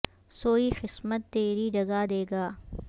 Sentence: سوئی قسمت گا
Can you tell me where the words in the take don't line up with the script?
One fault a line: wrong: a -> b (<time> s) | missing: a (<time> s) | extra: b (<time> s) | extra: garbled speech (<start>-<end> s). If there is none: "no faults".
extra: تری جگا دے (1.3 s)